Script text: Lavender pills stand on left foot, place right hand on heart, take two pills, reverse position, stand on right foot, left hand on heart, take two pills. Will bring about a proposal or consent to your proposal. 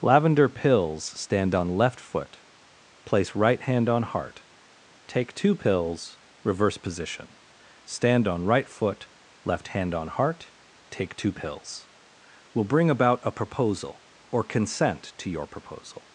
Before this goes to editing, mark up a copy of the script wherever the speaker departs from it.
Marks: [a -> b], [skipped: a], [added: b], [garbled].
Lavender pills stand on left foot, place right hand on heart, take two pills, reverse position, stand on right foot, left hand on heart, take two pills. Will bring about a proposal or consent to your proposal.